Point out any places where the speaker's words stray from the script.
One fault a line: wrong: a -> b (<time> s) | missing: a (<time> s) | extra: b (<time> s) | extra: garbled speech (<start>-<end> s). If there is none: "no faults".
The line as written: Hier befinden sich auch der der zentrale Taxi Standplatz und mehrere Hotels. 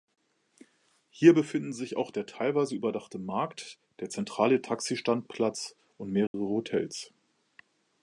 extra: teilweise überdachte Markt (2.2 s)